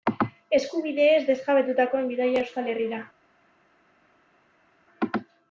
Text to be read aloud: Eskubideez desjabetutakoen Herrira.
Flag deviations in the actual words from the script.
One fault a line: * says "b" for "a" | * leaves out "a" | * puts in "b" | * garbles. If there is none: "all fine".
* puts in "bidaia Euskal"